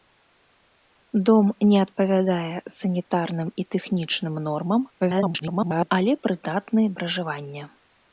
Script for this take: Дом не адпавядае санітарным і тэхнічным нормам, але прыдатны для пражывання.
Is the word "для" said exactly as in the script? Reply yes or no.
no